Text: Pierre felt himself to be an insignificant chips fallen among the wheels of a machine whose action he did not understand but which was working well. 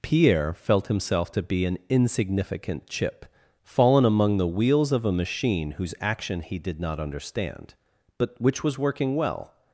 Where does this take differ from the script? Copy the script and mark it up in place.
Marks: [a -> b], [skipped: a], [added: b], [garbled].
Pierre felt himself to be an insignificant [chips -> chip] fallen among the wheels of a machine whose action he did not understand but which was working well.